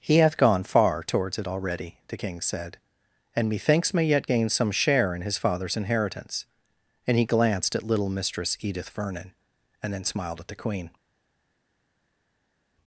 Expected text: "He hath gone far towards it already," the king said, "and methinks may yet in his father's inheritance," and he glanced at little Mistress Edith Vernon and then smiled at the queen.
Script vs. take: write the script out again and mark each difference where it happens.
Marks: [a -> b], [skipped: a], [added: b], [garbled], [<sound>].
"He hath gone far towards it already," the king said, "and methinks may yet [added: gain some share] in his father's inheritance," and he glanced at little Mistress Edith Vernon and then smiled at the queen.